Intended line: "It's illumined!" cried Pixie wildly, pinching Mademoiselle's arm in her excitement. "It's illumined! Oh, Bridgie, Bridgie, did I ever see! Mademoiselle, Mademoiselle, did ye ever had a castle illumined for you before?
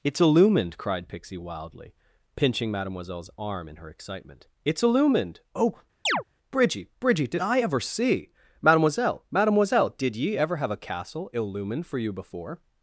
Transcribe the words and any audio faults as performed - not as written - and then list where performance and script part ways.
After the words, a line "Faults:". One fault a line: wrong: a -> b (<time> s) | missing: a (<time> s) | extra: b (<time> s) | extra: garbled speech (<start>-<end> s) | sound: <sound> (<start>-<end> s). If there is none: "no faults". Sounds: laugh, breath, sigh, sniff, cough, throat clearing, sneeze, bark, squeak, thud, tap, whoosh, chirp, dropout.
"It's illumined!" cried Pixie wildly, pinching Mademoiselle's arm in her excitement. "It's illumined! Oh, Bridgie, Bridgie, did I ever see! Mademoiselle, Mademoiselle, did ye ever have a castle illumined for you before?
Faults:
sound: chirp (6.1-6.2 s)
wrong: had -> have (10.6 s)